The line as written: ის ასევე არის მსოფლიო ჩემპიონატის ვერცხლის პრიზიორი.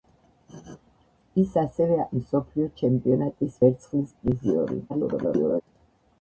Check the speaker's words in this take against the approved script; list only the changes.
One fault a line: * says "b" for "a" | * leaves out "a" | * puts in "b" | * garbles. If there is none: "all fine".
* leaves out "არის"
* garbles